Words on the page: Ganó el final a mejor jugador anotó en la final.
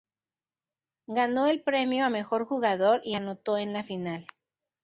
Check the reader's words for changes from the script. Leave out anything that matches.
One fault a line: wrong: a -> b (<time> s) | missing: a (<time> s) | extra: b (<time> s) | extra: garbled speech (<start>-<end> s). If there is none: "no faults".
wrong: final -> premio (1.6 s)
extra: y (3.0 s)